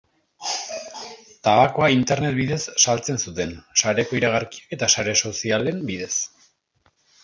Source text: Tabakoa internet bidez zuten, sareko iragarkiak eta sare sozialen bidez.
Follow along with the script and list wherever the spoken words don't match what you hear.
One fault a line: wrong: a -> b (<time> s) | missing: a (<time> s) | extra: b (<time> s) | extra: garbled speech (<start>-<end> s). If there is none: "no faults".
extra: saltzen (2.9 s)